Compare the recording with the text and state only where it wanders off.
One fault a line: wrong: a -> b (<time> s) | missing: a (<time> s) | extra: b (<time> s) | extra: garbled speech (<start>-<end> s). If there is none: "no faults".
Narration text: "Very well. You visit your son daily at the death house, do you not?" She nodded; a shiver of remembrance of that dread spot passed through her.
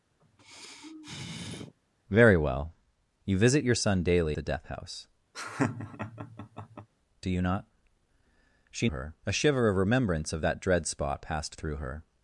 missing: at (4.4 s)
wrong: nodded -> her (8.9 s)